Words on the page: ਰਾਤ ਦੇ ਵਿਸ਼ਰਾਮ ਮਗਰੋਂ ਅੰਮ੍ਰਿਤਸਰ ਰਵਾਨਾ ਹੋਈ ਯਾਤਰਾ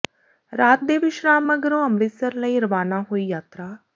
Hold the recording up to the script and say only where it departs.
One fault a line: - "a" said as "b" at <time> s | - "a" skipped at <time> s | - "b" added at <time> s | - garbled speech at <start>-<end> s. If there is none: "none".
- "ਲਈ" added at 2.3 s